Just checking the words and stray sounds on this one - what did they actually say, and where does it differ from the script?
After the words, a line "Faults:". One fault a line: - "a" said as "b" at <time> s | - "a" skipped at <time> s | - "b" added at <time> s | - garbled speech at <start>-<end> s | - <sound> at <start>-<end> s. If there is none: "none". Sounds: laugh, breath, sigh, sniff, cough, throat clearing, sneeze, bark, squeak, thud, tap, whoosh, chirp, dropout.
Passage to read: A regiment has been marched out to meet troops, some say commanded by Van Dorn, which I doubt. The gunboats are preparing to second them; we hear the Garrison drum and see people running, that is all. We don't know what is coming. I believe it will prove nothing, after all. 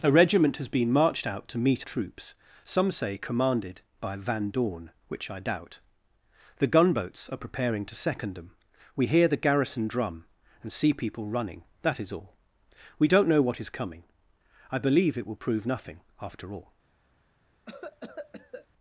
A regiment has been marched out to meet troops, some say commanded by Van Dorn, which I doubt. The gunboats are preparing to second them; we hear the Garrison drum and see people running, that is all. We don't know what is coming. I believe it will prove nothing, after all.
Faults:
- cough at 17.7-18.7 s